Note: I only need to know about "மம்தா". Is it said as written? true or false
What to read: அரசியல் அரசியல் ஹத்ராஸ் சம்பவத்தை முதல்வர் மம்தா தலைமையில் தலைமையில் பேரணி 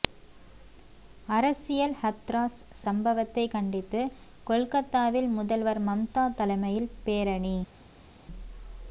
true